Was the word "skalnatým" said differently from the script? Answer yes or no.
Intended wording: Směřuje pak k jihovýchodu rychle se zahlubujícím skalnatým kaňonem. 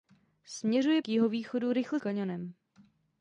yes